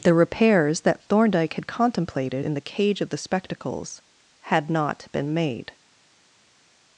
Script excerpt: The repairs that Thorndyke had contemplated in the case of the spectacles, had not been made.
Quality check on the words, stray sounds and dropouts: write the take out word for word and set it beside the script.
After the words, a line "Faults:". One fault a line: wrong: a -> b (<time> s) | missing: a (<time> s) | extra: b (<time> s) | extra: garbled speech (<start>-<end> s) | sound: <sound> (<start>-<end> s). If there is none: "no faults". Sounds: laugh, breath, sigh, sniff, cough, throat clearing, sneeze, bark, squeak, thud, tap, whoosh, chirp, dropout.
The repairs that Thorndyke had contemplated in the cage of the spectacles, had not been made.
Faults:
wrong: case -> cage (2.6 s)